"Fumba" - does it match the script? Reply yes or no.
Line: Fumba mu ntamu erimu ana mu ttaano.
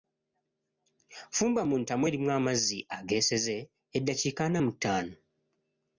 yes